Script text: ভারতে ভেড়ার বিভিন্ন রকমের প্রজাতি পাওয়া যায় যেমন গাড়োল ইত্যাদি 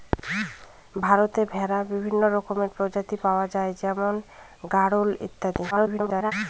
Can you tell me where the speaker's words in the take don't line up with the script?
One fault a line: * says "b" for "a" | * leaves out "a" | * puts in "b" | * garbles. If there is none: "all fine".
* garbles